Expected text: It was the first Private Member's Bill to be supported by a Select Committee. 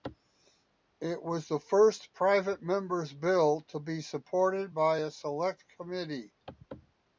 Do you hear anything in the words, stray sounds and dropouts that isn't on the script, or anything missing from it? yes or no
no